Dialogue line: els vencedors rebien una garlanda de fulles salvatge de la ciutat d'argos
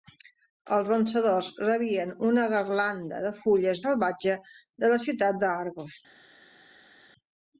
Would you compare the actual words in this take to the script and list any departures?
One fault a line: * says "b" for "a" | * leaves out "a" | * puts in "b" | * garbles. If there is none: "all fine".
all fine